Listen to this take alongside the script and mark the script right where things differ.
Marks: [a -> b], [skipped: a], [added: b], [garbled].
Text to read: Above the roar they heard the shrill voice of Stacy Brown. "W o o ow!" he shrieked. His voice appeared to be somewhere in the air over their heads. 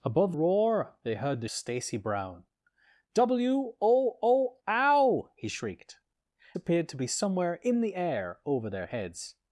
Above [skipped: the] roar they heard the [skipped: shrill voice of] Stacy Brown. "W o o ow!" he shrieked. [skipped: His voice] appeared to be somewhere in the air over their heads.